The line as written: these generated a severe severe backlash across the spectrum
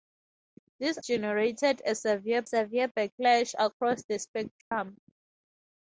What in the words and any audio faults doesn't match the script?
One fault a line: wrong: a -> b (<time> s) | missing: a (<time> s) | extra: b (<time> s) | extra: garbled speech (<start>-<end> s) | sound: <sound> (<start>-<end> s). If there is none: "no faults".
sound: dropout (4.6-4.7 s)